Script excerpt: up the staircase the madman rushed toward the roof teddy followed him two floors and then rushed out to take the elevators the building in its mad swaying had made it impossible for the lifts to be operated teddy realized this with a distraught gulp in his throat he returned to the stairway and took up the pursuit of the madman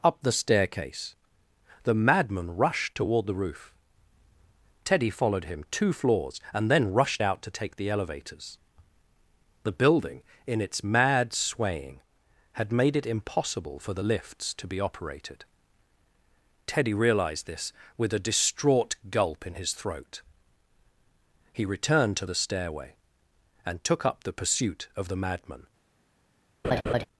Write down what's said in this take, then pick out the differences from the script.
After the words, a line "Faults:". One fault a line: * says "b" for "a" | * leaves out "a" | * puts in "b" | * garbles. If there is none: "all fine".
up the staircase the madman rushed toward the roof teddy followed him two floors and then rushed out to take the elevators the building in its mad swaying had made it impossible for the lifts to be operated teddy realized this with a distraught gulp in his throat he returned to the stairway and took up the pursuit of the madman
Faults:
all fine